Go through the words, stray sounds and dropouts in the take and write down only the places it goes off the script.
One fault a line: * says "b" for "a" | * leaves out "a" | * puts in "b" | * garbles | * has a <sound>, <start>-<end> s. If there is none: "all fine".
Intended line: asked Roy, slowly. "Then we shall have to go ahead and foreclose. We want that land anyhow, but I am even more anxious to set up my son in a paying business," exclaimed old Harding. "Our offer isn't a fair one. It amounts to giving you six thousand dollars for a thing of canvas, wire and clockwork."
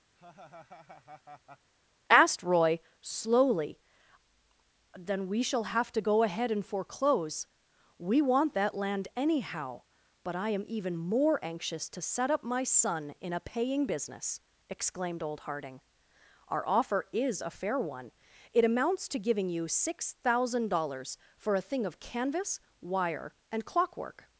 * has a laugh, 0.2-1.7 s
* says "is" for "isn't"